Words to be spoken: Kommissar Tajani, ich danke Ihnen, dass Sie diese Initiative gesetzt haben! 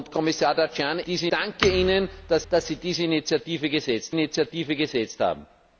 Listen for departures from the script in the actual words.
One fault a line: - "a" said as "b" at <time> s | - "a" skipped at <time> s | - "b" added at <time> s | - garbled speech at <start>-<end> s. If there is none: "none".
- "ich" said as "diese" at 1.0 s
- "dass" added at 2.5 s
- "Initiative gesetzt" added at 4.1 s